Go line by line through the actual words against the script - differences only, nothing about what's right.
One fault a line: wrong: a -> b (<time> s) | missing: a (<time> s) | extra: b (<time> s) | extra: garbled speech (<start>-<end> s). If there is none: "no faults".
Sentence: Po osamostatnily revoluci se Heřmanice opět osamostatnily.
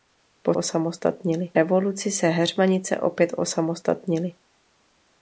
no faults